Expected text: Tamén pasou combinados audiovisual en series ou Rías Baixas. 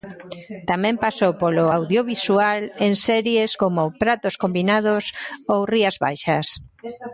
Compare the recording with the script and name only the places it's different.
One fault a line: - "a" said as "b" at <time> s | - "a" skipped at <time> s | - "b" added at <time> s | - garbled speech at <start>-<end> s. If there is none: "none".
- "combinados" said as "polo" at 1.4 s
- "como Pratos combinados" added at 3.6 s